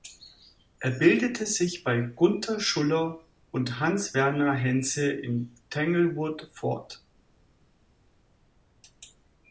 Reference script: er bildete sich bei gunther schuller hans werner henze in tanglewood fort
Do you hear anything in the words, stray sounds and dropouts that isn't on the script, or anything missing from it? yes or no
yes